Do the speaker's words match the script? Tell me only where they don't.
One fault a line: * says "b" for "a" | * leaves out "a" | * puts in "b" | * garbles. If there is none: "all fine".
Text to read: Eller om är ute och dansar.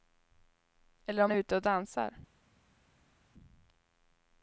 all fine